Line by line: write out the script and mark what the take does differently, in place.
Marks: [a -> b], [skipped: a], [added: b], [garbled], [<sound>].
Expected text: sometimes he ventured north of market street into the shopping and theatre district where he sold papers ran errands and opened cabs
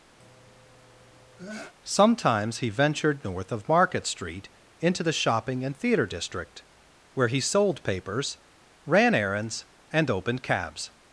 [sneeze] sometimes he ventured north of market street into the shopping and theatre district where he sold papers ran errands and opened cabs